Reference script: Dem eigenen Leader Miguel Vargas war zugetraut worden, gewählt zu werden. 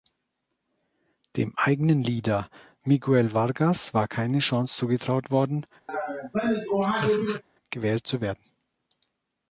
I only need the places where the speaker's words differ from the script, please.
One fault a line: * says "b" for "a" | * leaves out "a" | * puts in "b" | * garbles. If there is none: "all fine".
* puts in "keine Chance"